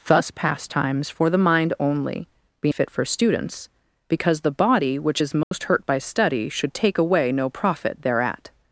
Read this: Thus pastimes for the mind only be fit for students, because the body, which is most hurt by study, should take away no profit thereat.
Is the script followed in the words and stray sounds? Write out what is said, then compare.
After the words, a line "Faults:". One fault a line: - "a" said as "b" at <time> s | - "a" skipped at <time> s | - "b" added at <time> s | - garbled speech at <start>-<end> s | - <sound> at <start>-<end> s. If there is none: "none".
Thus pastimes for the mind only be fit for students, because the body, which is most hurt by study, should take away no profit thereat.
Faults:
- dropout at 5.4-5.5 s